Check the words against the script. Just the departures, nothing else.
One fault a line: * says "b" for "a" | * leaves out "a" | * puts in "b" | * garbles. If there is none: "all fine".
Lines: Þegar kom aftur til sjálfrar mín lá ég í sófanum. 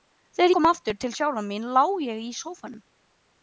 all fine